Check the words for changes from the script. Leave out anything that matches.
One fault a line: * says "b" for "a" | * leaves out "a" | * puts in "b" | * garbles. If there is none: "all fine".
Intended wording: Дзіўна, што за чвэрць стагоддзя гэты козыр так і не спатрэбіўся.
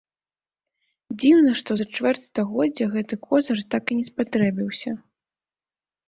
all fine